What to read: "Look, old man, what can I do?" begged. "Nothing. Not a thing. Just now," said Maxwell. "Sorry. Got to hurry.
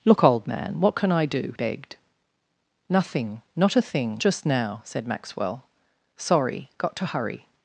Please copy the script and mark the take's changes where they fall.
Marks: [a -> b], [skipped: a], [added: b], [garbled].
"Look, old man, what can I do?" begged. "Nothing. Not a thing. Just now," said Maxwell. "Sorry. Got to hurry.